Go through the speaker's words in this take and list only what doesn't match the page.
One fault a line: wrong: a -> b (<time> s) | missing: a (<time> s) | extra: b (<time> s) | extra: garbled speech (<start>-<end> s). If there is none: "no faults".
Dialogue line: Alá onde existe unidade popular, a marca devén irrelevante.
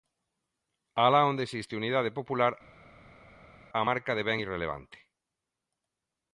no faults